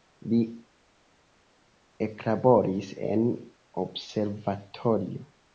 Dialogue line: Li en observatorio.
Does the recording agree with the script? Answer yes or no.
no